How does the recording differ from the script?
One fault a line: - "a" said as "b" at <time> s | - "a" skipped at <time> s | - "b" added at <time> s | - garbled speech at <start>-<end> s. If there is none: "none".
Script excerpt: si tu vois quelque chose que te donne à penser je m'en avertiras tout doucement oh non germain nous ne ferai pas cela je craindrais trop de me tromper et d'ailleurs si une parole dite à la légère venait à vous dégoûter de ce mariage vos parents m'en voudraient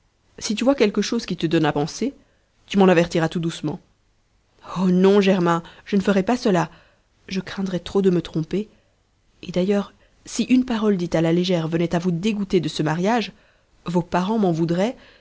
- "que" said as "qui" at 1.2 s
- "je" said as "tu" at 2.7 s
- "nous" said as "je" at 5.8 s